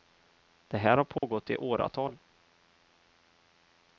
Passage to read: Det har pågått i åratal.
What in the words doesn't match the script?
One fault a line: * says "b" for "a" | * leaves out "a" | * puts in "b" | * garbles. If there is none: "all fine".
* puts in "här"